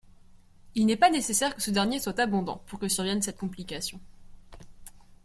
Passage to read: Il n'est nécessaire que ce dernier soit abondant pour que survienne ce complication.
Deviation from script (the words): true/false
true